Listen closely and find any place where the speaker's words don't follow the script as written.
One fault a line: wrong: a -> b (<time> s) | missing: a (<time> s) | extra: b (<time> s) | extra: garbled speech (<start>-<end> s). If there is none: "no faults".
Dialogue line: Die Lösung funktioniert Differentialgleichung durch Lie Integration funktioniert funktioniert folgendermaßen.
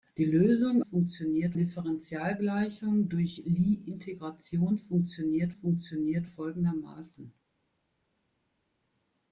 no faults